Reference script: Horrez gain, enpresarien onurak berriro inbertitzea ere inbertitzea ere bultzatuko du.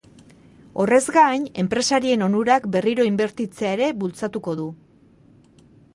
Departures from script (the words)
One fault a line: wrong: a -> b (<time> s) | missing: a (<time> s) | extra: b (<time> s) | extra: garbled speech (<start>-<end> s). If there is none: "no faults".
missing: inbertitzea ere (3.9 s)